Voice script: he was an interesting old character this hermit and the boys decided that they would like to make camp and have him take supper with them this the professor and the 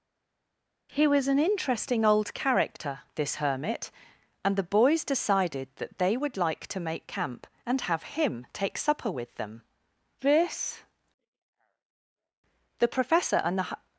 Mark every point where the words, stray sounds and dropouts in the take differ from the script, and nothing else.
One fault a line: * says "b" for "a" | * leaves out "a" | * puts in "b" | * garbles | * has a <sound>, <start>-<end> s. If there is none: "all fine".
all fine